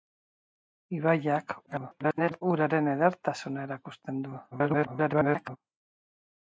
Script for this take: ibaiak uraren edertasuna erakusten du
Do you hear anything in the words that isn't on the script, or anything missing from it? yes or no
yes